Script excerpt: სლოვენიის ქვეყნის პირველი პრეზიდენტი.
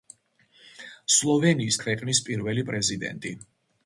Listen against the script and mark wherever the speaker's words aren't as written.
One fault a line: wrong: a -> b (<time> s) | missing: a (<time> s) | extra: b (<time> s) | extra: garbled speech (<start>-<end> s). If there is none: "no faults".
no faults